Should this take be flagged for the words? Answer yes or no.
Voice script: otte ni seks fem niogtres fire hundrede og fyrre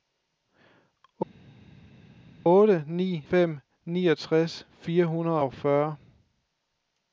yes